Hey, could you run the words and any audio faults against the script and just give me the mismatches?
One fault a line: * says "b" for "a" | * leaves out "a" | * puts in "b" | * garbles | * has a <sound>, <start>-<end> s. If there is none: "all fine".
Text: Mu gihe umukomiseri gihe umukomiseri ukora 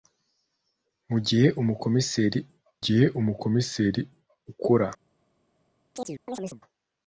* has a chirp, 5.9-6.6 s